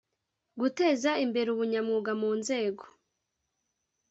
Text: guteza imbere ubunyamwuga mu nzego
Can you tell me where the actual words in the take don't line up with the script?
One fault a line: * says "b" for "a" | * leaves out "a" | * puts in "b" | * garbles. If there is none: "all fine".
all fine